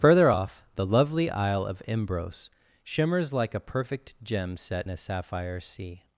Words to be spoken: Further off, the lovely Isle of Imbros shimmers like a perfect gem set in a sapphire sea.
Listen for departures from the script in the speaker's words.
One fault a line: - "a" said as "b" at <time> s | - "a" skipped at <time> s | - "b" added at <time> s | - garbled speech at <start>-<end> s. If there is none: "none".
- "in" skipped at 4.9 s